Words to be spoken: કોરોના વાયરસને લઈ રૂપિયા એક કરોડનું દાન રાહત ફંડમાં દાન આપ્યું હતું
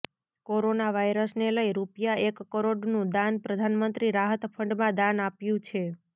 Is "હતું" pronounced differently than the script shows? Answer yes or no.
yes